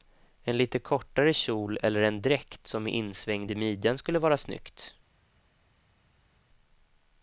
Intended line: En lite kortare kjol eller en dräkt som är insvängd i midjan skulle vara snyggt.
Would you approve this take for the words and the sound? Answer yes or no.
yes